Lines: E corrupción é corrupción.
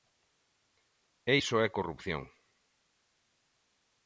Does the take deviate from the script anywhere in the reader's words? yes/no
yes